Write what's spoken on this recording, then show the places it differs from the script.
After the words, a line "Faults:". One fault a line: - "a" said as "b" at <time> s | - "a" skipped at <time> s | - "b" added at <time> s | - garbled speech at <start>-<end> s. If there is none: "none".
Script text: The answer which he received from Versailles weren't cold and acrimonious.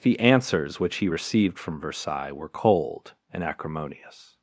The answers which he received from Versailles were cold and acrimonious.
Faults:
- "answer" said as "answers" at 0.2 s
- "weren't" said as "were" at 2.3 s